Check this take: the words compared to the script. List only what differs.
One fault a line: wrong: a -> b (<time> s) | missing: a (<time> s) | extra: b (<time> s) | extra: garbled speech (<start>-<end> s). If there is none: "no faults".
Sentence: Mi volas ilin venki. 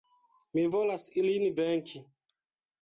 no faults